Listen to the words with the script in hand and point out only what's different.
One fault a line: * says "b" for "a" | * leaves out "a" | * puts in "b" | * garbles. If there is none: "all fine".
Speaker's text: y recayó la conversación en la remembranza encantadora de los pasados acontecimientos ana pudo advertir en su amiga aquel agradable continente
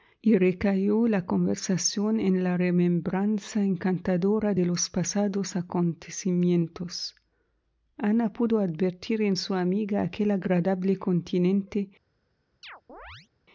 all fine